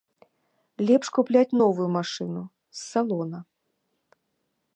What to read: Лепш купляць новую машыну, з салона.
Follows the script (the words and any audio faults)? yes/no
yes